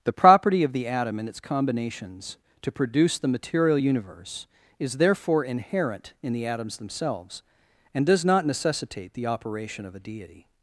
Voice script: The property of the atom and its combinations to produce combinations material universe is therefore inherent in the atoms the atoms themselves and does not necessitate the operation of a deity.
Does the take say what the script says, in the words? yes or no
no